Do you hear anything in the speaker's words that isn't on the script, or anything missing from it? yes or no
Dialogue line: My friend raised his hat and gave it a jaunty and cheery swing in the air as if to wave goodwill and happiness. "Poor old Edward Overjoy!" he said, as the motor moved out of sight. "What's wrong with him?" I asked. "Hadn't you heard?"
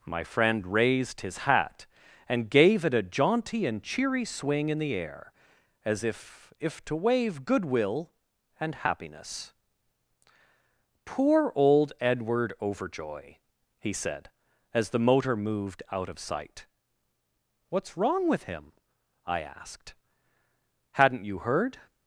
yes